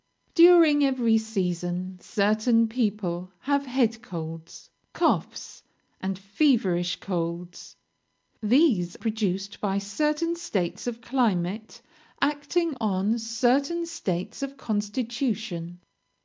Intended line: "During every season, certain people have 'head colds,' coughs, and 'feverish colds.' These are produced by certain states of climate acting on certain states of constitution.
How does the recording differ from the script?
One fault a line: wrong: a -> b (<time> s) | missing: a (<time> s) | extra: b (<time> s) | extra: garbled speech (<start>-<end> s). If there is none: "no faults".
missing: are (9.0 s)